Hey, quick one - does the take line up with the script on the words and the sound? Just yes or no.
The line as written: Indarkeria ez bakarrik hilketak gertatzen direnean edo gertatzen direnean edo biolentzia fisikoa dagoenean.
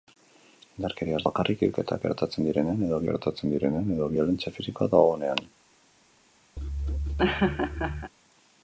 no